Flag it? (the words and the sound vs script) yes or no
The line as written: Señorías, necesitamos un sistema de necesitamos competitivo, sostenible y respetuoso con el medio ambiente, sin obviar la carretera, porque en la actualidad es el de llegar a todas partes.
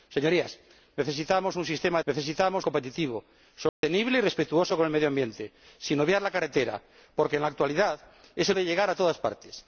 yes